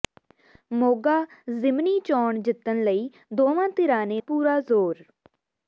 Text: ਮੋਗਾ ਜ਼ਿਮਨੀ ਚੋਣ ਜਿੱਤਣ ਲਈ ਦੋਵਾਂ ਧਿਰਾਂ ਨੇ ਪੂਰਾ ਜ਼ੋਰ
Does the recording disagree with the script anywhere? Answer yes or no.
no